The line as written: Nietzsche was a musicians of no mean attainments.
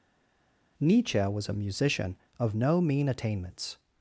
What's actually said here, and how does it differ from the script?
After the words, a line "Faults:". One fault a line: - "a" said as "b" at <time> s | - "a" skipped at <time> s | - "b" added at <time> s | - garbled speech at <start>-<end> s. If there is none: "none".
Nietzsche was a musician of no mean attainments.
Faults:
- "musicians" said as "musician" at 1.5 s